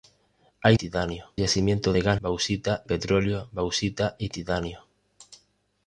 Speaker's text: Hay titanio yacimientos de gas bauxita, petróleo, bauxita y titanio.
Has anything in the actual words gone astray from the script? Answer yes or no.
no